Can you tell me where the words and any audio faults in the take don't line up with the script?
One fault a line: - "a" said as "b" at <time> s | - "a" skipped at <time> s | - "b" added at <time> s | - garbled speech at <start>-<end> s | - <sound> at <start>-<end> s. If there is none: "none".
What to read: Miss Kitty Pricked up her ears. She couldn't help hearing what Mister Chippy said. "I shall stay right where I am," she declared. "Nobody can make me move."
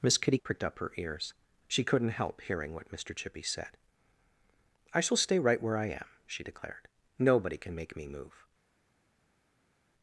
none